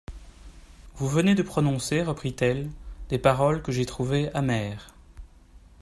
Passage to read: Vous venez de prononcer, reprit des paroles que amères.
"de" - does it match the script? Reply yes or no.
yes